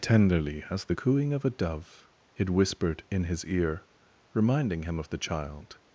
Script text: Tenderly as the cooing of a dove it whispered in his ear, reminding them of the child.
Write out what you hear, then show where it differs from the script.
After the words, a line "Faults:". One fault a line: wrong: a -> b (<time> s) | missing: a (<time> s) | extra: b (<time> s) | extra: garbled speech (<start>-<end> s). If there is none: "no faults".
Tenderly as the cooing of a dove it whispered in his ear, reminding him of the child.
Faults:
wrong: them -> him (4.8 s)